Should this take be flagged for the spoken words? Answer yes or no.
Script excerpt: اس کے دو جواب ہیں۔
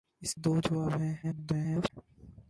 yes